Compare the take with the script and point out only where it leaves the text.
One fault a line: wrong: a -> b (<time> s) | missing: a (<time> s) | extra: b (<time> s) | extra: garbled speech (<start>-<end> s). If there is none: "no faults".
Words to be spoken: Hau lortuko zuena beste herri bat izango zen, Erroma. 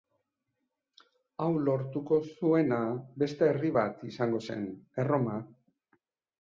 no faults